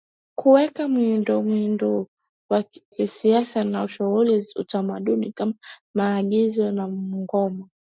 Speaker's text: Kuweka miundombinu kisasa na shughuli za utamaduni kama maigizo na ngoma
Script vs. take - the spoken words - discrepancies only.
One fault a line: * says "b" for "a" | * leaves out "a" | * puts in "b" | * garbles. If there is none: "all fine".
all fine